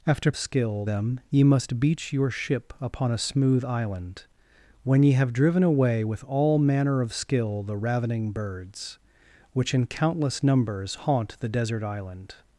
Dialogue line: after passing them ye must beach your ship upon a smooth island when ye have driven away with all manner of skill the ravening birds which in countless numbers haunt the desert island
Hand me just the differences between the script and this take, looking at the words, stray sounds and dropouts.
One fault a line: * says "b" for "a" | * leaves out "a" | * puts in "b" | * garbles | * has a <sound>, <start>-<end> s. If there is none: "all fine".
* says "skill" for "passing"